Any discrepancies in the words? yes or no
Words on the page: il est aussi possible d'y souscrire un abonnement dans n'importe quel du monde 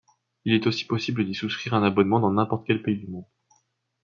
yes